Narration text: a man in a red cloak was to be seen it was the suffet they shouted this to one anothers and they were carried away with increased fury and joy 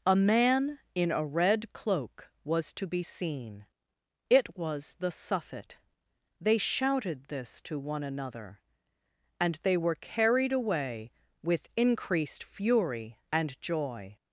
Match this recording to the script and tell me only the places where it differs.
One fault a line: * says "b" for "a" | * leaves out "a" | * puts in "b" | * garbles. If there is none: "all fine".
* says "another" for "anothers"